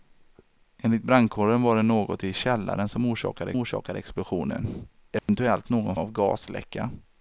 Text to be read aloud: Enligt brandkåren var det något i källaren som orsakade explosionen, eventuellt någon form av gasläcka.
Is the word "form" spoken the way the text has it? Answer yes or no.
no